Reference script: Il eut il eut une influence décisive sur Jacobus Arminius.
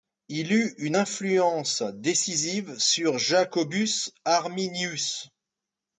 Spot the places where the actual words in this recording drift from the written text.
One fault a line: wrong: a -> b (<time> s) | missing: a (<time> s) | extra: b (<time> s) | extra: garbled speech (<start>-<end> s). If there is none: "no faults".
missing: il eut (0.7 s)